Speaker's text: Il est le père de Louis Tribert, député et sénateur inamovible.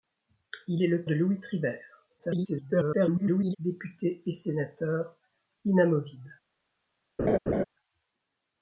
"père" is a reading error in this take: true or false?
true